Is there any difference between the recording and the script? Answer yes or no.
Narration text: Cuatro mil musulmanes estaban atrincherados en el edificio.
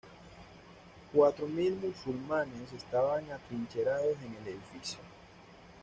no